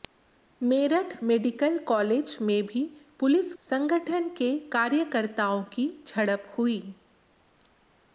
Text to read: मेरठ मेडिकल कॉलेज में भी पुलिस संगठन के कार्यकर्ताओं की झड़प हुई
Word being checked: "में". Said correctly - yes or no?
yes